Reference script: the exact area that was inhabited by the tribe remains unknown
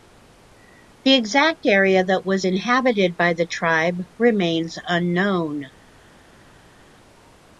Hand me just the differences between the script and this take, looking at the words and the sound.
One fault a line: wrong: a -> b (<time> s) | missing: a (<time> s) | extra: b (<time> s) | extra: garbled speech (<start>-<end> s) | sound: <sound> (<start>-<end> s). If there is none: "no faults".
no faults